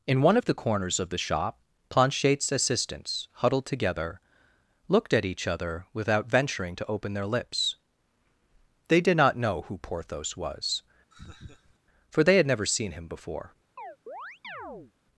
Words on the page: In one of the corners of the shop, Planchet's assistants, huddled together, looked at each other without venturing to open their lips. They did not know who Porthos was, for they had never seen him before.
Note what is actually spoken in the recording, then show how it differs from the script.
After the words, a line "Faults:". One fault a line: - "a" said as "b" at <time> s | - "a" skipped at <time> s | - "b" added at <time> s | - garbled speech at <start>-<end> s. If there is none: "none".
In one of the corners of the shop, Planchet's assistants, huddled together, looked at each other without venturing to open their lips. They did not know who Porthos was, for they had never seen him before.
Faults:
none